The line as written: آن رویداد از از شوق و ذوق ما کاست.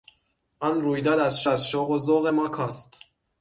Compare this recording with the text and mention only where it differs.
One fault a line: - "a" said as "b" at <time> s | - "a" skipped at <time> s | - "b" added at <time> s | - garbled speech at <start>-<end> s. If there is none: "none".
none